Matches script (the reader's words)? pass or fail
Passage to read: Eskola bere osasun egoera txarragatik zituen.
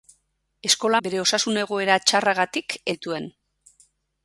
pass